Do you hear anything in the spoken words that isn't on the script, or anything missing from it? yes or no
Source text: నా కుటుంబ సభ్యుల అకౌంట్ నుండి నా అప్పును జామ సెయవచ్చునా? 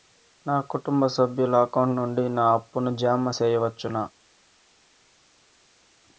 no